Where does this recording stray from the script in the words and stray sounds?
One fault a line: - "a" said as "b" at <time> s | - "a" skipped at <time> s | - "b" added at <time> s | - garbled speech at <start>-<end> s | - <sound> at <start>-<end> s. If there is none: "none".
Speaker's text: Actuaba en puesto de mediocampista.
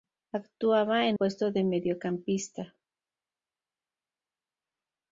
none